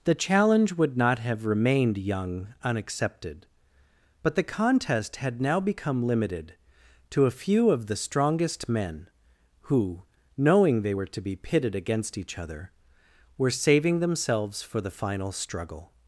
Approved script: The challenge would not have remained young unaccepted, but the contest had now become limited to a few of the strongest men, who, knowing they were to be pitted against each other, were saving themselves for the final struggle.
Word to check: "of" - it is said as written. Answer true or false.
true